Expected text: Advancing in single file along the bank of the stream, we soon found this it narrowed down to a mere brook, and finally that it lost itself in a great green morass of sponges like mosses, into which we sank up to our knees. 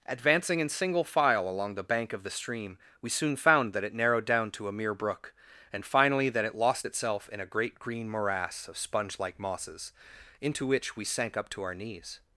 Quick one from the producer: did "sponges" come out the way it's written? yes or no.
no